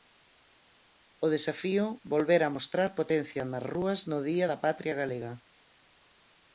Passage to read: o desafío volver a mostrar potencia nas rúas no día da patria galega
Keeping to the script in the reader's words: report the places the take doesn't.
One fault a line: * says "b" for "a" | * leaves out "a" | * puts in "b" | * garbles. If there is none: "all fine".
all fine